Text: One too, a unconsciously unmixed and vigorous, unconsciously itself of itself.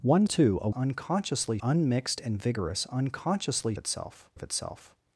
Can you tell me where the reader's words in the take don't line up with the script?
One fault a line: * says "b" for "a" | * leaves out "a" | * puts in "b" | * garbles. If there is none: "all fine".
all fine